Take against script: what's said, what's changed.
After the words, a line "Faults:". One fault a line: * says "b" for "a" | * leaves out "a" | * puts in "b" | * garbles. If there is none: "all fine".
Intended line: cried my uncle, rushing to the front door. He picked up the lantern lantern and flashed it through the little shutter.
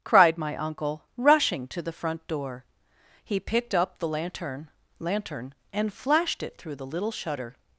cried my uncle, rushing to the front door. He picked up the lantern lantern and flashed it through the little shutter.
Faults:
all fine